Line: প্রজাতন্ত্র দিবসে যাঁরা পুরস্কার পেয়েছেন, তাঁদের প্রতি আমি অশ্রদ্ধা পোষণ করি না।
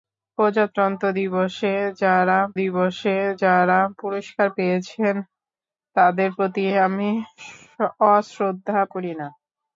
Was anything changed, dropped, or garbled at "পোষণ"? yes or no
yes